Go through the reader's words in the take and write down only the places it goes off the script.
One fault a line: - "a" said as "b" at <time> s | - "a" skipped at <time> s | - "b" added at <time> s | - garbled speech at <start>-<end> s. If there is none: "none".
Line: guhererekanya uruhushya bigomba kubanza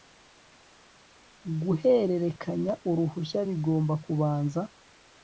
none